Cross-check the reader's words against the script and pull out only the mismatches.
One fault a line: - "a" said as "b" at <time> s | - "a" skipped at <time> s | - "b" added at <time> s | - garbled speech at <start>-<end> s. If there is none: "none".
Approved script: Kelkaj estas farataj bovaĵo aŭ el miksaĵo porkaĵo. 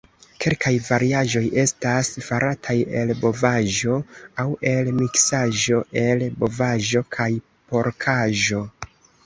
- "variaĵoj" added at 0.8 s
- "el" added at 3.0 s
- "el bovaĵo kaj" added at 6.1 s